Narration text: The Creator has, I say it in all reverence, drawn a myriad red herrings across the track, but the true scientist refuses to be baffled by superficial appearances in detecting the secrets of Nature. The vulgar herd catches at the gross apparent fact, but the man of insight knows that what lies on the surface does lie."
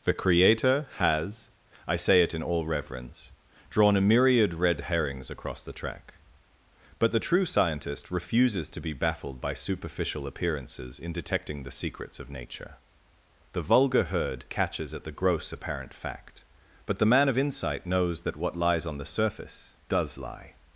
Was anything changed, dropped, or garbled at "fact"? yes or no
no